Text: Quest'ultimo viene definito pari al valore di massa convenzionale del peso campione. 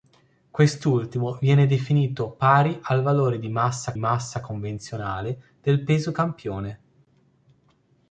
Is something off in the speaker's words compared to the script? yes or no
yes